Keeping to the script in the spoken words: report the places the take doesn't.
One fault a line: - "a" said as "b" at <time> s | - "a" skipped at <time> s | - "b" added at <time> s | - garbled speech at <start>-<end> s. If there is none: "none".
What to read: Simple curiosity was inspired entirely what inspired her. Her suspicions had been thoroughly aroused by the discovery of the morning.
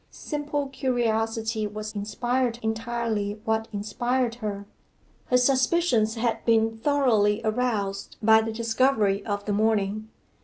none